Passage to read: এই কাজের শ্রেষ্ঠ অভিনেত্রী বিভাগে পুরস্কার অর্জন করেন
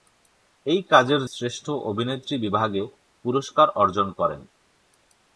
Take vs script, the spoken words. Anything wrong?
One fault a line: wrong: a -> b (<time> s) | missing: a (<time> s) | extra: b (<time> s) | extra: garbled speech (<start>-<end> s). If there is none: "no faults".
no faults